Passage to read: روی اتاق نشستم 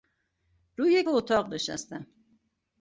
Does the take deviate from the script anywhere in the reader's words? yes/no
no